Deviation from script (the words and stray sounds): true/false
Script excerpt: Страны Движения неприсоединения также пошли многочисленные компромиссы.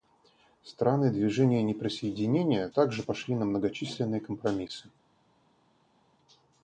true